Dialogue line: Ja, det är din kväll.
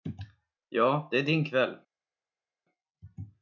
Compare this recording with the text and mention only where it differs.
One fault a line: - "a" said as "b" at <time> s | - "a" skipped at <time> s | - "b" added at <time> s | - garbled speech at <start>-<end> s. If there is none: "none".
none